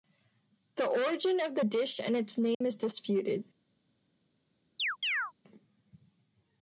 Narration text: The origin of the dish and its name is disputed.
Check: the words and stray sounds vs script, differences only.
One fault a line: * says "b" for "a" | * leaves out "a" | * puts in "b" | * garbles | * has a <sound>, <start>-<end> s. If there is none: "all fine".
* has a dropout, 2.5-2.6 s
* has a chirp, 4.8-5.3 s